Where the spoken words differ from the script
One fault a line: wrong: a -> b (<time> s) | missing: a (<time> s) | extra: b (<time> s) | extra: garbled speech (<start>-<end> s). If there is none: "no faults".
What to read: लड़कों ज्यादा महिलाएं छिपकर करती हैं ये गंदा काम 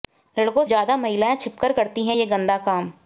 no faults